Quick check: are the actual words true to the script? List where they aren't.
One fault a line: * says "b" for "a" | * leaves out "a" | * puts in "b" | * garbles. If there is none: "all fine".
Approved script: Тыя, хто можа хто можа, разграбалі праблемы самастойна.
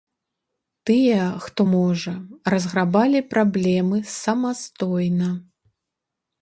* leaves out "хто можа"